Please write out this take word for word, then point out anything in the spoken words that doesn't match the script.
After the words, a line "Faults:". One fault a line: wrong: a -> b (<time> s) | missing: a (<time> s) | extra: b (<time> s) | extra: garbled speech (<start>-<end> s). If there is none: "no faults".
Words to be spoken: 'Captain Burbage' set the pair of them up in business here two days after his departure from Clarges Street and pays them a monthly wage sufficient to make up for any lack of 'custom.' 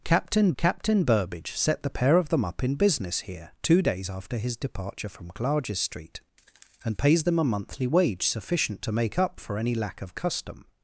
'Captain captain Burbage' set the pair of them up in business here two days after his departure from Clarges Street and pays them a monthly wage sufficient to make up for any lack of 'custom.'
Faults:
extra: captain (0.6 s)